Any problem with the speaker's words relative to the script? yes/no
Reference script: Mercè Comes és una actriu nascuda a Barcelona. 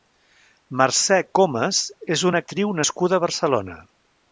no